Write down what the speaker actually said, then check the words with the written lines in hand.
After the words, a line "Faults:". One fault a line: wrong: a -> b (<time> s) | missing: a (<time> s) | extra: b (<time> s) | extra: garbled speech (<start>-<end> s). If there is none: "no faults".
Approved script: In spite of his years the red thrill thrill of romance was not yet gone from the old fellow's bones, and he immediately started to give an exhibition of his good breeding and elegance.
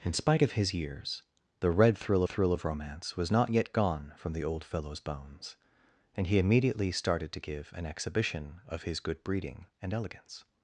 In spite of his years the red thrill thrill of romance was not yet gone from the old fellow's bones, and he immediately started to give an exhibition of his good breeding and elegance.
Faults:
no faults